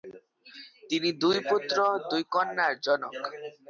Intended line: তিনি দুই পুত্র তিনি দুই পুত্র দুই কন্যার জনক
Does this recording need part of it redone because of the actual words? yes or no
yes